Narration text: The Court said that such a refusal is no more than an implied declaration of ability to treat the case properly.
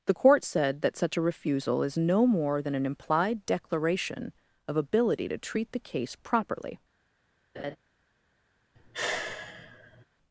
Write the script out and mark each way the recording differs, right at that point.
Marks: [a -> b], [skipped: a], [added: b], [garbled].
The Court said that such a refusal is no more than an implied declaration of ability to treat the case properly.